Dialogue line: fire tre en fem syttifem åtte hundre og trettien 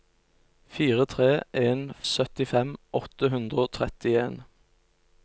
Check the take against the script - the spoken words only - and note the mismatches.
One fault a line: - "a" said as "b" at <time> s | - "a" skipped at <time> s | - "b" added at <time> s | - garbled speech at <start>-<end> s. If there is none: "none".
- "fem" skipped at 1.8 s